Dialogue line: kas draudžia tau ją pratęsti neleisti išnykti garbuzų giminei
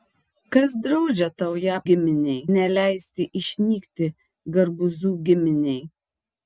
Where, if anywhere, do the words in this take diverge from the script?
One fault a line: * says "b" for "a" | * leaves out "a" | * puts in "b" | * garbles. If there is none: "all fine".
* says "giminei" for "pratęsti"